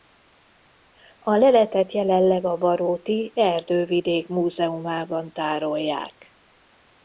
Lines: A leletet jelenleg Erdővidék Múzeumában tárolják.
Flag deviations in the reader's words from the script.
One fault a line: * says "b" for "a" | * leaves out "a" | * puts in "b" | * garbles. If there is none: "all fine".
* puts in "a baróti"